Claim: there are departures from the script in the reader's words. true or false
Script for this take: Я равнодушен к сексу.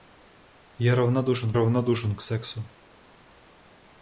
true